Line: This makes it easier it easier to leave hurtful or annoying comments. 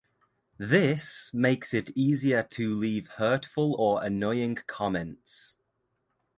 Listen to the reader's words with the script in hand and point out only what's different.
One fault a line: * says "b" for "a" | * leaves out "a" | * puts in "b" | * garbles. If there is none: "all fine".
* leaves out "it easier"